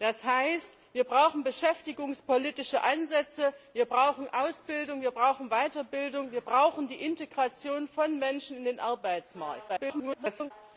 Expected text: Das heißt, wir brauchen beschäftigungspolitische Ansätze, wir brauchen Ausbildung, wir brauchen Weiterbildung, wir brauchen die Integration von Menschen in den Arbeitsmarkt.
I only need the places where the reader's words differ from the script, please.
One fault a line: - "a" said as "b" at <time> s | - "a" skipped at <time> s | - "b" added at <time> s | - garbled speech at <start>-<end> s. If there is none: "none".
- garbled speech at 9.7-10.5 s